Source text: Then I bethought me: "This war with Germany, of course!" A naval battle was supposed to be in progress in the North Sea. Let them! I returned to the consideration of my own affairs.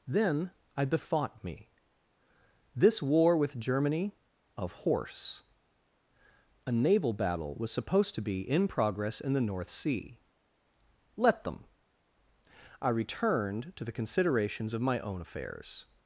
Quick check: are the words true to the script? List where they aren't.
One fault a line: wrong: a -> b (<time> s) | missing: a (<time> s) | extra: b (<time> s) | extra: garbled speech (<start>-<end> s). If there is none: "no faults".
wrong: course -> horse (4.7 s)
wrong: consideration -> considerations (13.9 s)